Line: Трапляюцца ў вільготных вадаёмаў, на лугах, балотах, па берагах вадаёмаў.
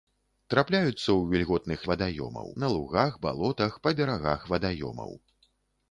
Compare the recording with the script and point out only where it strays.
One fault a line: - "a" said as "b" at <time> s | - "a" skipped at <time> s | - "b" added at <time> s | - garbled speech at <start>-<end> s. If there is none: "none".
none